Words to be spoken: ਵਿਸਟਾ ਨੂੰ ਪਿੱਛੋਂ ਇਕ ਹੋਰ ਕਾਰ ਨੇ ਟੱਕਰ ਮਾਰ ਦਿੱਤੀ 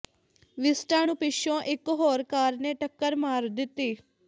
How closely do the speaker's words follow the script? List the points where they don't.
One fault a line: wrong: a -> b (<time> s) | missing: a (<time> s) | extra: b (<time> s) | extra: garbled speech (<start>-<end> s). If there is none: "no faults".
no faults